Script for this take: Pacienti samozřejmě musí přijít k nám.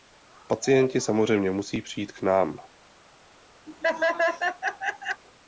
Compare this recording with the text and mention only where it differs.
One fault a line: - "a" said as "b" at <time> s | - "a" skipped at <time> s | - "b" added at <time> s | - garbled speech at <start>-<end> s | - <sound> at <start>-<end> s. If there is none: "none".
- laugh at 3.7-5.2 s